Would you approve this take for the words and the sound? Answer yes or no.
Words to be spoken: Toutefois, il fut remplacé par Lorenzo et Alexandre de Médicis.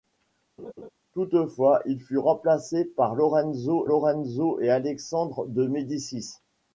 no